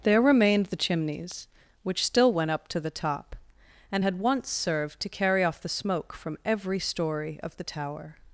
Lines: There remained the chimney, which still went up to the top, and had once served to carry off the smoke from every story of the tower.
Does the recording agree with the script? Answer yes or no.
no